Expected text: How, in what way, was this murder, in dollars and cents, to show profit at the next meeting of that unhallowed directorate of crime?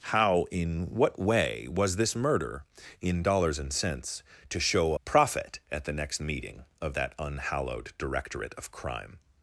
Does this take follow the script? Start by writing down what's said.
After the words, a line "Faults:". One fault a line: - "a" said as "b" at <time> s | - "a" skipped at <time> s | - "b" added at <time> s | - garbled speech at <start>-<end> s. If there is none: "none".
How, in what way, was this murder, in dollars and cents, to show profit at the next meeting of that unhallowed directorate of crime?
Faults:
none